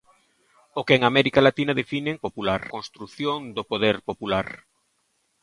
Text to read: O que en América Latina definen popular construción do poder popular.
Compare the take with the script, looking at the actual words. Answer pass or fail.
pass